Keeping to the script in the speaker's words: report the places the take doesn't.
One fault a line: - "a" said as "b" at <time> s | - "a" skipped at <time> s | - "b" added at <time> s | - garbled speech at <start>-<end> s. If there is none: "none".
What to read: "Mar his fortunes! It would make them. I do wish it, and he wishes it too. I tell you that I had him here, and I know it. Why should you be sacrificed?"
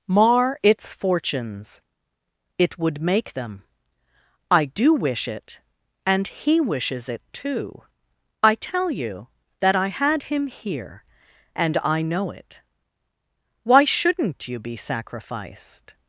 - "his" said as "its" at 0.6 s
- "should" said as "shouldn't" at 13.8 s